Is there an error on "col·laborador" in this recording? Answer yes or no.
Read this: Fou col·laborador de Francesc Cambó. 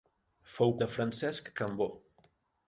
yes